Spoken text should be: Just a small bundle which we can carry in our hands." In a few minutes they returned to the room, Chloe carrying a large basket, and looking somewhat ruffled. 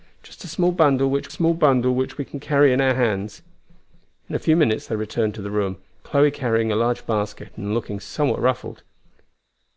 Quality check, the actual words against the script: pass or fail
fail